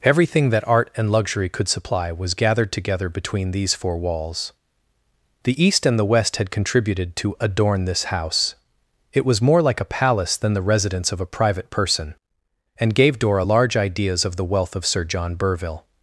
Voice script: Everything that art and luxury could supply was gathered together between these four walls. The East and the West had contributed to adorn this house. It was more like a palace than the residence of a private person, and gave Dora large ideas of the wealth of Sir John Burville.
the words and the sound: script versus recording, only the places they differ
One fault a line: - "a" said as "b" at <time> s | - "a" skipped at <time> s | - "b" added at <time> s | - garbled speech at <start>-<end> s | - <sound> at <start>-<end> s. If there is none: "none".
none